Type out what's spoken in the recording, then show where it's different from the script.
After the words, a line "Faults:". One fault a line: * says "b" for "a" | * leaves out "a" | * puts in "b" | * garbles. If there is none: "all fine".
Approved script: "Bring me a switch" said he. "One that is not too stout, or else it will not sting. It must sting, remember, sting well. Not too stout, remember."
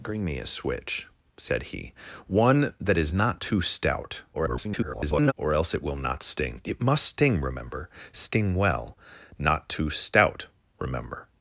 "Bring me a switch" said he. "One that is not too stout, [garbled] or else it will not sting. It must sting, remember, sting well. Not too stout, remember."
Faults:
* garbles